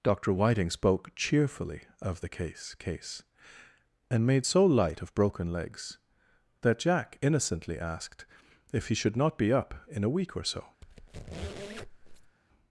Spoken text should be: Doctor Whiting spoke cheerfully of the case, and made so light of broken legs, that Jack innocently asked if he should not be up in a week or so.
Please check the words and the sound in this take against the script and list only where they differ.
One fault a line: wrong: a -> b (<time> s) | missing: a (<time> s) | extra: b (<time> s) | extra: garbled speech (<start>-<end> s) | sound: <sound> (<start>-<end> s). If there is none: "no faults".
extra: case (2.7 s)
sound: squeak (10.8-12.4 s)